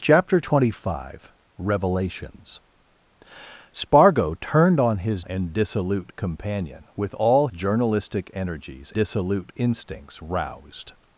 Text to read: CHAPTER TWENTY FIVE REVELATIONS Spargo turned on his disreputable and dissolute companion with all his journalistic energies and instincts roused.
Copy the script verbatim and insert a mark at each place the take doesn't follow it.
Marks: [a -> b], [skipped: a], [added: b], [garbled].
CHAPTER TWENTY FIVE REVELATIONS Spargo turned on his [skipped: disreputable] and dissolute companion with all [skipped: his] journalistic energies [and -> dissolute] instincts roused.